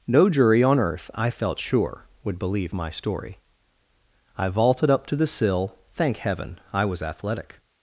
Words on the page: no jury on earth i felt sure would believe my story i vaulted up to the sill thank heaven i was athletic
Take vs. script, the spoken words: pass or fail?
pass